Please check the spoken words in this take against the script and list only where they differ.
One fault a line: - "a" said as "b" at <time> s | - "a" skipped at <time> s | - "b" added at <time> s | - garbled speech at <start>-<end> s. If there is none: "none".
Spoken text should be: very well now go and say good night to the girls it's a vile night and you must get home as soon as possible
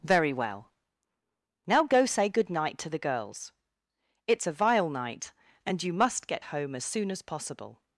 - "and" skipped at 2.0 s